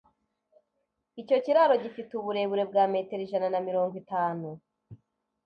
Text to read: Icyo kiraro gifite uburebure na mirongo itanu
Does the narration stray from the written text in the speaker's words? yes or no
yes